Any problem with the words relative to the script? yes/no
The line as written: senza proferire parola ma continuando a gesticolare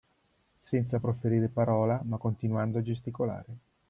no